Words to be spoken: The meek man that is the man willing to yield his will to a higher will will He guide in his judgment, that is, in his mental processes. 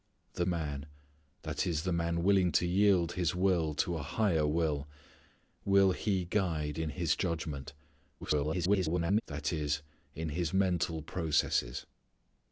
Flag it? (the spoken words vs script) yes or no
yes